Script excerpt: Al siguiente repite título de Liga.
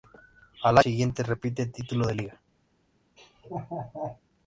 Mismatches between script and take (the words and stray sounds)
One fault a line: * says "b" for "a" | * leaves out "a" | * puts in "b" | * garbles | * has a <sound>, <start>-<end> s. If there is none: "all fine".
* has a laugh, 3.2-4.2 s